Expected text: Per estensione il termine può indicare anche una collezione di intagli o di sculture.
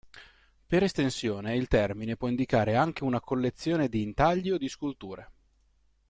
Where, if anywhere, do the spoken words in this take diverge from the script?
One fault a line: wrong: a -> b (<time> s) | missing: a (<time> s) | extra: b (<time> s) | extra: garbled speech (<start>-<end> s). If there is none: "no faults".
no faults